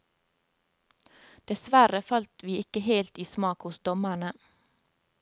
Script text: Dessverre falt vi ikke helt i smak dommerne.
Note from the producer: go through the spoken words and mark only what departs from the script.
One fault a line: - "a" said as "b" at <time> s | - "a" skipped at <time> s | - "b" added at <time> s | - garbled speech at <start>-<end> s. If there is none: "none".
- "hos" added at 3.7 s